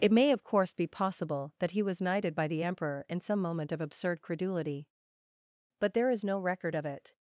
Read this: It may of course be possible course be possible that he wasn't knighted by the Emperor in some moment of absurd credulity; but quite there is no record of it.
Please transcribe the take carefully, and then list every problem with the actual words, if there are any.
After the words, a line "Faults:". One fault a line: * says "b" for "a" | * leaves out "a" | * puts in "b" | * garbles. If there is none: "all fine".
It may of course be possible that he was knighted by the Emperor in some moment of absurd credulity; but there is no record of it.
Faults:
* leaves out "course be possible"
* says "was" for "wasn't"
* leaves out "quite"